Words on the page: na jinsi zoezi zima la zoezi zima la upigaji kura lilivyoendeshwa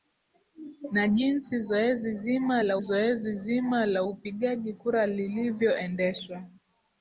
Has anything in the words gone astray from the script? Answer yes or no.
no